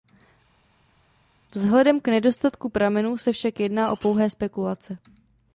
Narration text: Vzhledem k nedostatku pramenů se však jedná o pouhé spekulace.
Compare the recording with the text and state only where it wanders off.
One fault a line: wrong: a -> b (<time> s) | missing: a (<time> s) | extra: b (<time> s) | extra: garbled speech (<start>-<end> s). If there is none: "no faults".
no faults